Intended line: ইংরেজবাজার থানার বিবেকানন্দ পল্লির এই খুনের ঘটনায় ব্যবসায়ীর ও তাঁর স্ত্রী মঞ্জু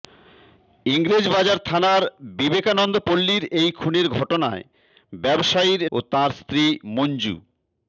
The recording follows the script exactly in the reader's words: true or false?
true